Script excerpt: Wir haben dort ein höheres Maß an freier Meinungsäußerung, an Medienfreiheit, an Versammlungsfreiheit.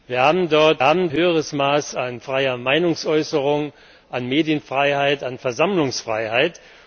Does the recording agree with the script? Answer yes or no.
no